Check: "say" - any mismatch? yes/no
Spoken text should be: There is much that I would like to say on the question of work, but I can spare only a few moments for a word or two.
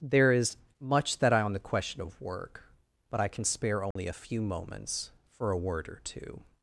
yes